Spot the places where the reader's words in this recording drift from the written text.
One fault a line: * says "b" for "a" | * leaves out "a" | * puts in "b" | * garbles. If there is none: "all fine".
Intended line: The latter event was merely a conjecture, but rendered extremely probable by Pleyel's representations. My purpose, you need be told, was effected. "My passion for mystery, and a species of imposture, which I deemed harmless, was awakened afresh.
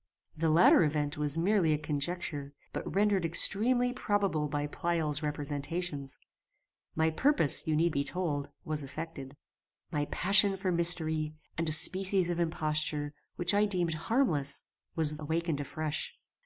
all fine